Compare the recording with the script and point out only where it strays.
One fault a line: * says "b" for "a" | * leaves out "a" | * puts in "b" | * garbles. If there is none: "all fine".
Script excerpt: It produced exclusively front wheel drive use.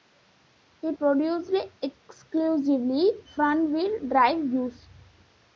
all fine